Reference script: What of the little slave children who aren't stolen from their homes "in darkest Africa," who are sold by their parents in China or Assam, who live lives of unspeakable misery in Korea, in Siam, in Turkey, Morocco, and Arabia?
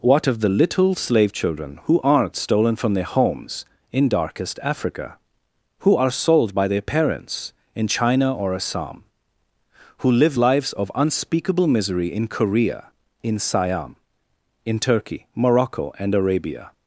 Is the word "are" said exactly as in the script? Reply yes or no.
yes